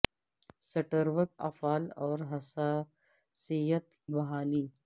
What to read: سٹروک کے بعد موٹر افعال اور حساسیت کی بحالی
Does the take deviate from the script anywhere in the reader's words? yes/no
yes